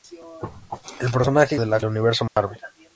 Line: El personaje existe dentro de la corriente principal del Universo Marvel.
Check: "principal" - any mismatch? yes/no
yes